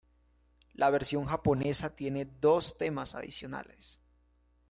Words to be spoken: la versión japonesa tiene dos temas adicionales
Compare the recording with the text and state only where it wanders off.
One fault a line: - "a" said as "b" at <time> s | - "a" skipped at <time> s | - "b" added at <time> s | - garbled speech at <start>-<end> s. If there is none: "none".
none